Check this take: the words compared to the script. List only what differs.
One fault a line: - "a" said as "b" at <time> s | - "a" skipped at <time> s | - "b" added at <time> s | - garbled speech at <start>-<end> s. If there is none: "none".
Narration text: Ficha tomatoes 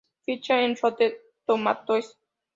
- "en Rotten" added at 0.6 s